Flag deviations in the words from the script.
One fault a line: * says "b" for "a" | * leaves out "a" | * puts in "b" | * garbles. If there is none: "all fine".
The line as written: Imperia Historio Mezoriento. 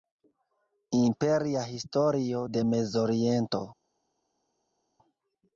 * puts in "de"